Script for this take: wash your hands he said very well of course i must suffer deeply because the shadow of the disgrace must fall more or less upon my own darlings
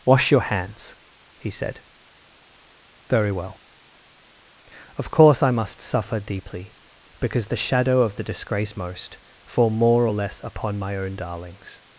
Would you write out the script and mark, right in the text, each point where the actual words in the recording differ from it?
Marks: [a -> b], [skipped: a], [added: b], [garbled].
wash your hands he said very well of course i must suffer deeply because the shadow of the disgrace [must -> most] fall more or less upon my own darlings